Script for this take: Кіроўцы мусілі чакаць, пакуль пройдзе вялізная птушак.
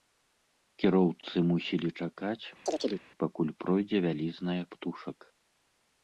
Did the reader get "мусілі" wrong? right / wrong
right